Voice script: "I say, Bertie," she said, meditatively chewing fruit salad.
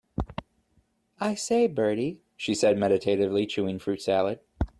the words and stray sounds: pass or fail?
pass